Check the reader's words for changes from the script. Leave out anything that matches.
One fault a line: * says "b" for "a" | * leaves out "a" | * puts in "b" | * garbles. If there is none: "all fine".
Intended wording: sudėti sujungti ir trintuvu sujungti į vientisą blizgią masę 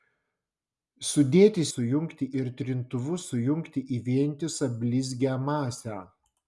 all fine